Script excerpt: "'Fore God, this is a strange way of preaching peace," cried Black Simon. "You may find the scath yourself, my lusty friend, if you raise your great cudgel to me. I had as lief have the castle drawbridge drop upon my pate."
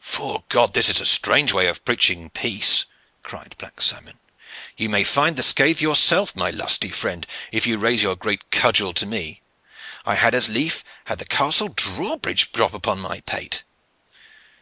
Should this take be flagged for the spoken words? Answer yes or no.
no